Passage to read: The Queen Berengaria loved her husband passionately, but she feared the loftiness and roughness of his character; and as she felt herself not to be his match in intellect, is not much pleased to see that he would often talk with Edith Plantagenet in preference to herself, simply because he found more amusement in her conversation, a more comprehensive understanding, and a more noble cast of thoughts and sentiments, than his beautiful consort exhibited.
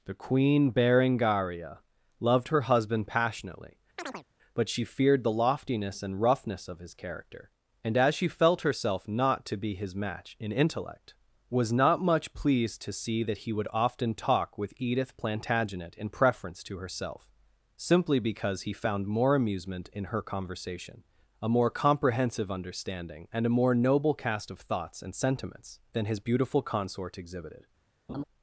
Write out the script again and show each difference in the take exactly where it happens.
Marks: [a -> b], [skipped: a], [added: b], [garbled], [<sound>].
The Queen Berengaria loved her husband passionately, [chirp] but she feared the loftiness and roughness of his character; and as she felt herself not to be his match in intellect, [is -> was] not much pleased to see that he would often talk with Edith Plantagenet in preference to herself, simply because he found more amusement in her conversation, a more comprehensive understanding, and a more noble cast of thoughts and sentiments, than his beautiful consort exhibited. [laugh]